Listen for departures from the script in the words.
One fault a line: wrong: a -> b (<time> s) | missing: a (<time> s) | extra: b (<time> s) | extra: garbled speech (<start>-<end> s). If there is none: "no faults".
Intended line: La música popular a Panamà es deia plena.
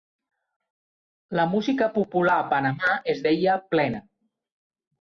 no faults